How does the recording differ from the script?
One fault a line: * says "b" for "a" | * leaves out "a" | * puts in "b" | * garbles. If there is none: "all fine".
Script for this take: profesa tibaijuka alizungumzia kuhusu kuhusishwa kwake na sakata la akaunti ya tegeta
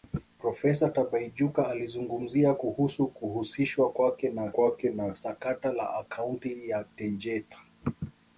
* puts in "kwake na"